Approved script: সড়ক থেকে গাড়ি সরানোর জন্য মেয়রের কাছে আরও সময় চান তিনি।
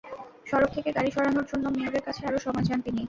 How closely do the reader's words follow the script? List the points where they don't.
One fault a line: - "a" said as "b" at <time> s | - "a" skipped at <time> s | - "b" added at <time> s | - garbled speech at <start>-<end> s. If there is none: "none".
none